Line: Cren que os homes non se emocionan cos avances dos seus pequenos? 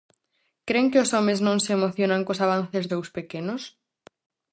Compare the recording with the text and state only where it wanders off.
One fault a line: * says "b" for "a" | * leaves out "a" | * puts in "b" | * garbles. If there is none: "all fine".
* leaves out "dos"